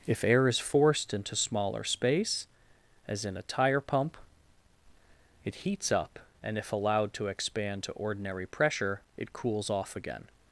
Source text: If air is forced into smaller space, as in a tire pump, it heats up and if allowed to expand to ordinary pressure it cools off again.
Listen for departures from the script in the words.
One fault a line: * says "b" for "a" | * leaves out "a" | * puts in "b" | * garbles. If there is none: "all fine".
all fine